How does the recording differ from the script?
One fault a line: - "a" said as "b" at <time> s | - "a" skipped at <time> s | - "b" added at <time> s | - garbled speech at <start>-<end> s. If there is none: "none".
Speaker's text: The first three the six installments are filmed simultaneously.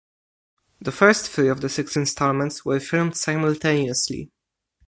- "of" added at 1.5 s
- "are" said as "were" at 2.6 s